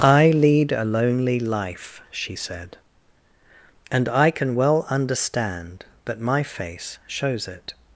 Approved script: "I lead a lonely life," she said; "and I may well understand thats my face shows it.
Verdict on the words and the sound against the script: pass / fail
fail